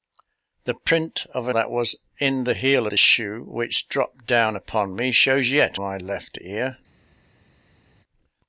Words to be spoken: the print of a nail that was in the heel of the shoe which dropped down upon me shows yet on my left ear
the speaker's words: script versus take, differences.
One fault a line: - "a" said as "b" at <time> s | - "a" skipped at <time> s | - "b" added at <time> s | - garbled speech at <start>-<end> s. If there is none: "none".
- "nail" skipped at 1.5 s
- "of" skipped at 2.9 s
- "on" skipped at 5.8 s